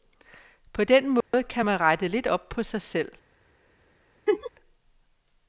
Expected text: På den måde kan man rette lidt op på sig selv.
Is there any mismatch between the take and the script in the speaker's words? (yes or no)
no